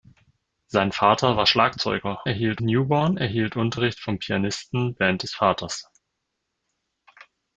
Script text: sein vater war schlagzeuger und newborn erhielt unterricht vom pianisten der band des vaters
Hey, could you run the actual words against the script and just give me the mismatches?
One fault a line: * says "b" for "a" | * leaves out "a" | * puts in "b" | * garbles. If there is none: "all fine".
* says "erhielt" for "und"
* leaves out "der"